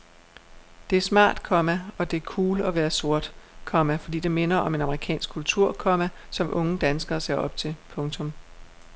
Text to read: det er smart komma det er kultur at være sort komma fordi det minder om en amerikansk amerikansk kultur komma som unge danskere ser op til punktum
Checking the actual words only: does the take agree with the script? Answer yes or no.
no